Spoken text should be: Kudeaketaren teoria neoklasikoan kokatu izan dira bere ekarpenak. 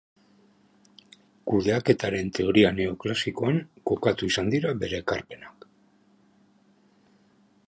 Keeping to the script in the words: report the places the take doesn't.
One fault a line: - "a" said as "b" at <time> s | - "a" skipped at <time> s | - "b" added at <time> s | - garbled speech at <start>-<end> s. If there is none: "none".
none